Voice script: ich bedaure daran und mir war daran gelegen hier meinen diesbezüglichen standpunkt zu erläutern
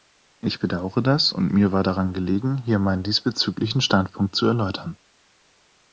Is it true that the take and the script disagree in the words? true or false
true